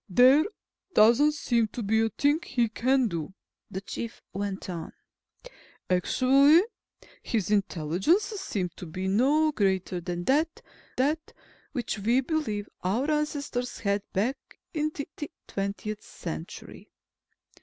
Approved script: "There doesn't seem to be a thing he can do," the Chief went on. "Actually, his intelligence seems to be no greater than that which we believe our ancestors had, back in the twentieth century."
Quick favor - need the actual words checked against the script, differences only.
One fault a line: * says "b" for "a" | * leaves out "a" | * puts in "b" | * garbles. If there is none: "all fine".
* puts in "that"
* puts in "the"